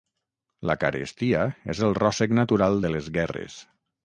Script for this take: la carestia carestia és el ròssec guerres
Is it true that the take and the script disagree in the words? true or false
true